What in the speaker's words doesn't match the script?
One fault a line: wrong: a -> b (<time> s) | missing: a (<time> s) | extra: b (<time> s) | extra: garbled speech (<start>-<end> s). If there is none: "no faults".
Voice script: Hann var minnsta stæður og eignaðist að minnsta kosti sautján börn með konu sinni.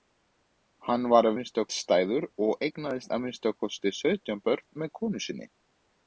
no faults